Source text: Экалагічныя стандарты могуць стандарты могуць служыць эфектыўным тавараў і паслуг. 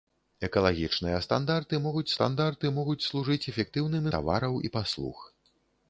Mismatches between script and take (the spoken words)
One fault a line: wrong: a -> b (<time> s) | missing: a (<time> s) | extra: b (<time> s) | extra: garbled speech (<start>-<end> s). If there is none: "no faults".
no faults